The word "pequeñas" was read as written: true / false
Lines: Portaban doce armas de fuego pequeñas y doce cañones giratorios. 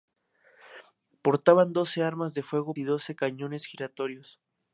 false